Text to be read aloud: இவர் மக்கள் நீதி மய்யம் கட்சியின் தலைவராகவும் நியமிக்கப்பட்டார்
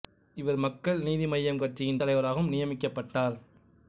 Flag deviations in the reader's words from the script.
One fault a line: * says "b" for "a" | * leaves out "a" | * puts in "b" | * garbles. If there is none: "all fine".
all fine